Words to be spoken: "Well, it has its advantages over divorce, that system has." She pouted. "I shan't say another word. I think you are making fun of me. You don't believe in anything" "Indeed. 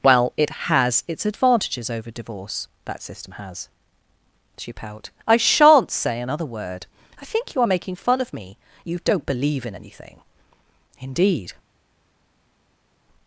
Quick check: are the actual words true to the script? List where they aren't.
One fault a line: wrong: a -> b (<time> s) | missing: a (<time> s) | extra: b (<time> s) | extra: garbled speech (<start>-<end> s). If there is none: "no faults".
wrong: pouted -> pout (4.7 s)